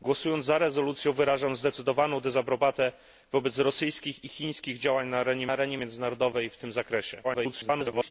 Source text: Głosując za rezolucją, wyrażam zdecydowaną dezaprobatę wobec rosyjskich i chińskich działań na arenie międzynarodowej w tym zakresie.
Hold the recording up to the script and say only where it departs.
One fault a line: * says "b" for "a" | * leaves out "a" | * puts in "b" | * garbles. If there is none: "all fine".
* puts in "arenie"
* garbles